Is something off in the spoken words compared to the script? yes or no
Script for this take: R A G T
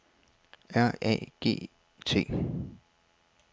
no